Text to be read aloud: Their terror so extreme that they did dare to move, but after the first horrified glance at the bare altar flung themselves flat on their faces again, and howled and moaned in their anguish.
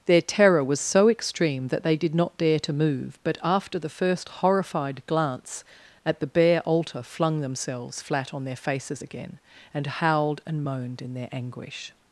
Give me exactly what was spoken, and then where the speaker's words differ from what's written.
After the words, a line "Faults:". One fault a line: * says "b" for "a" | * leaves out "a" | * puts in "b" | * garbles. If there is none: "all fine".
Their terror was so extreme that they did not dare to move, but after the first horrified glance at the bare altar flung themselves flat on their faces again, and howled and moaned in their anguish.
Faults:
* puts in "was"
* puts in "not"